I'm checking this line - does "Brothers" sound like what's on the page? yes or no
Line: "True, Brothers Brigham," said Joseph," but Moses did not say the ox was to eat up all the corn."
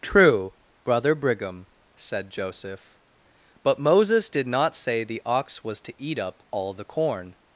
no